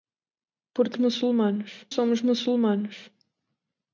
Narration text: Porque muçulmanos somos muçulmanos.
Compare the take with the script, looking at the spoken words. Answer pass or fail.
pass